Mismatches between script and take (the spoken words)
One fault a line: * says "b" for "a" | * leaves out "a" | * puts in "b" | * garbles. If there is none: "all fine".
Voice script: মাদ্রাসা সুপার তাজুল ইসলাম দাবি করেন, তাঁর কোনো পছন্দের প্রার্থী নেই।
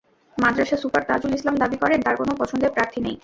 all fine